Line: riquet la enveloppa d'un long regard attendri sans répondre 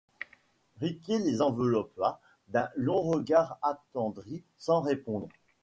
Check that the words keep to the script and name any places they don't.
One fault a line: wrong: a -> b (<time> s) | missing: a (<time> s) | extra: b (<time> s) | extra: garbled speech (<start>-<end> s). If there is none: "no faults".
wrong: la -> les (1.2 s)